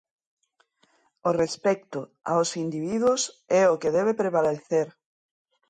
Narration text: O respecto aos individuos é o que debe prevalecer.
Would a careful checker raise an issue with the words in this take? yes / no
no